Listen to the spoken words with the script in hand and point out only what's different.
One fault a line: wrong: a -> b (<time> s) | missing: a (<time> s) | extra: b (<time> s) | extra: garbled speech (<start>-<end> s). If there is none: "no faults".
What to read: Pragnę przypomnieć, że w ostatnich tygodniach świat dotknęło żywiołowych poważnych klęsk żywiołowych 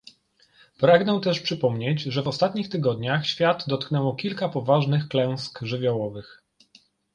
extra: też (1.2 s)
wrong: żywiołowych -> kilka (4.2 s)